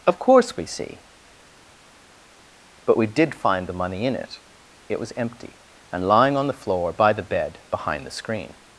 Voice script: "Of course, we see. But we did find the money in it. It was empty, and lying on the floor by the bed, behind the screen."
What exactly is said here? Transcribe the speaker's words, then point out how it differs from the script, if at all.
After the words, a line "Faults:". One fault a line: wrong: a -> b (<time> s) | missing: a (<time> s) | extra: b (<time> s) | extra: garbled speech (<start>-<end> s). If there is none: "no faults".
"Of course, we see. But we did find the money in it. It was empty, and lying on the floor by the bed, behind the screen."
Faults:
no faults